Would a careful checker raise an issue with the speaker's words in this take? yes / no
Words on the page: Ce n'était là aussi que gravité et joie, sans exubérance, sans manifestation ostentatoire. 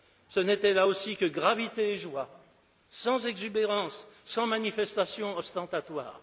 no